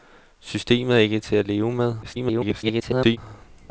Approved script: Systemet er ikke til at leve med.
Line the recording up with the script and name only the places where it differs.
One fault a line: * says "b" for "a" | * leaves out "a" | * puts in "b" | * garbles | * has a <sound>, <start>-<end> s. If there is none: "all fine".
* garbles